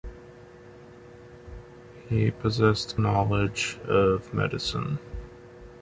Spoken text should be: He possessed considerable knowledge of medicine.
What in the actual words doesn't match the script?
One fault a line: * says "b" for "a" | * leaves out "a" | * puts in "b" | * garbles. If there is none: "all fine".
* leaves out "considerable"